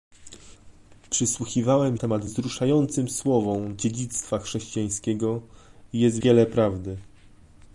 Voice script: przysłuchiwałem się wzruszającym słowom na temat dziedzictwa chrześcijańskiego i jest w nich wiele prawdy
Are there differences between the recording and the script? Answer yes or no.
yes